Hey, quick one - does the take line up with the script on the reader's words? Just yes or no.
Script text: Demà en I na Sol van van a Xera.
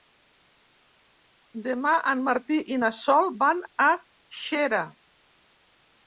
no